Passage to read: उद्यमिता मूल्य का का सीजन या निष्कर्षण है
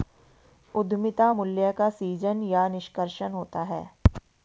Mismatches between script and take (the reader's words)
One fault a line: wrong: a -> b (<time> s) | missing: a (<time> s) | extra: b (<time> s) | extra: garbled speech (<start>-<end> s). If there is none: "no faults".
missing: का (1.9 s)
extra: होता (3.3 s)